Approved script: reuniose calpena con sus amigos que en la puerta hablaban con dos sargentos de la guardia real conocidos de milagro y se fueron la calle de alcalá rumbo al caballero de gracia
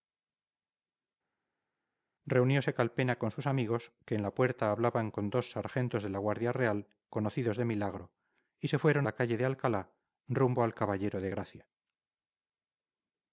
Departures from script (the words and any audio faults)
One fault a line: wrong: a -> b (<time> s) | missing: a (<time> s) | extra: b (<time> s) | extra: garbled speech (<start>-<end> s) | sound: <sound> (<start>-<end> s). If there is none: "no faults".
no faults